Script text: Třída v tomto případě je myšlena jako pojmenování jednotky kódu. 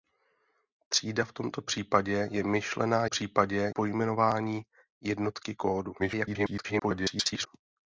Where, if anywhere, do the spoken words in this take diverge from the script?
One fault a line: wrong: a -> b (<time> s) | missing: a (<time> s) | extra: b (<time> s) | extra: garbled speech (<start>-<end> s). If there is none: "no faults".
wrong: jako -> případě (3.0 s)
extra: garbled speech (6.0-7.5 s)